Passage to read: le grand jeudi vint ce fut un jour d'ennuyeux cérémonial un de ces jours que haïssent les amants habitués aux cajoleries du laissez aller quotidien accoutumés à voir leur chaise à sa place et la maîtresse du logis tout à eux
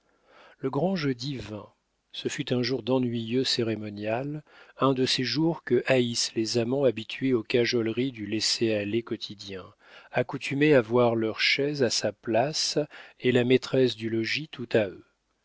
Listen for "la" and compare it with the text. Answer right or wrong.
right